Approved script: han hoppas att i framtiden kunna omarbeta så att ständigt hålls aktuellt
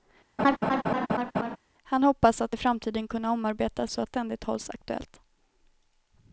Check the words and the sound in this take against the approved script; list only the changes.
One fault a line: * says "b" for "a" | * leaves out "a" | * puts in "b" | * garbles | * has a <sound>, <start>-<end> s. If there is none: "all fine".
* has a laugh, 0.4-1.6 s